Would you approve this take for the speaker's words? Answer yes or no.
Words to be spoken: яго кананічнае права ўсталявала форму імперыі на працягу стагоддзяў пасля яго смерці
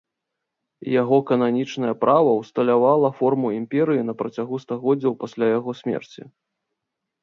yes